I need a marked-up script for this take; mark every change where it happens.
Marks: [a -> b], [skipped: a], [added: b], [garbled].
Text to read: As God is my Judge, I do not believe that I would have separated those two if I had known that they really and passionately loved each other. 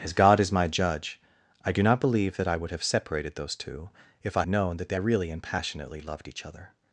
As God is my Judge, I do not believe that I would have separated those two if I [skipped: had] known that they really and passionately loved each other.